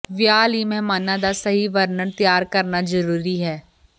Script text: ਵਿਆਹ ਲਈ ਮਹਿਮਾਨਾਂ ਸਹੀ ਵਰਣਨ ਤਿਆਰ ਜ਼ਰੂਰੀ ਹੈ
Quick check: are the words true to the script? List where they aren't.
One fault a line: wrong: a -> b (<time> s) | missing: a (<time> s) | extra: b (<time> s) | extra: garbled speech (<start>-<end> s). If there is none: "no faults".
extra: ਦਾ (1.2 s)
extra: ਕਰਨਾ (2.5 s)